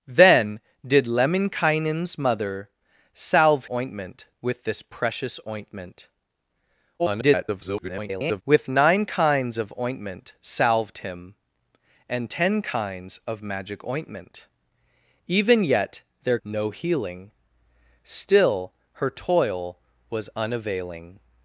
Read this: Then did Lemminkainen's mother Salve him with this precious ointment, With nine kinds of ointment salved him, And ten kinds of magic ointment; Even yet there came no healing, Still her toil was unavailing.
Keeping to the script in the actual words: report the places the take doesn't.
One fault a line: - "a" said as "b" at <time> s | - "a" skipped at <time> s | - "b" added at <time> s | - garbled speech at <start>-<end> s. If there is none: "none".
- "him" said as "ointment" at 3.7 s
- garbled speech at 7.0-8.4 s
- "came" skipped at 16.4 s